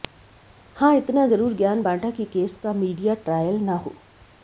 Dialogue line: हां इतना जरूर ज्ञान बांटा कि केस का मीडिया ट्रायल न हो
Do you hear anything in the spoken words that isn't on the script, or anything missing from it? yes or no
no